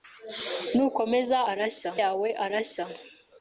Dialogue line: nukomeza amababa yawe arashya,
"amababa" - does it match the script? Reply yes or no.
no